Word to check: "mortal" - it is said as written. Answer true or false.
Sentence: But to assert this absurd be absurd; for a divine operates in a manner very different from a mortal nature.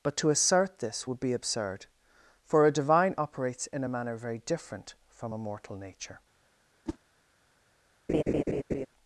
true